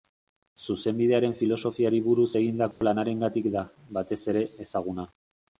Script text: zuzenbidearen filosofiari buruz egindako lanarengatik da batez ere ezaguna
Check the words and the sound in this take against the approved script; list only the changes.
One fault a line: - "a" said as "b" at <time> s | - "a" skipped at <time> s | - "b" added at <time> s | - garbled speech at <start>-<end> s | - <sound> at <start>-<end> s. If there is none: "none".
- dropout at 2.7-2.8 s